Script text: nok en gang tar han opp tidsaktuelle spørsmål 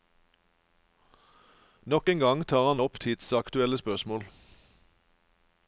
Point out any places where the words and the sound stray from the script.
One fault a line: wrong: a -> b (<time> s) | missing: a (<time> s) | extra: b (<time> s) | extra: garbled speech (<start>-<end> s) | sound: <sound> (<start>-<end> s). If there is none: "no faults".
no faults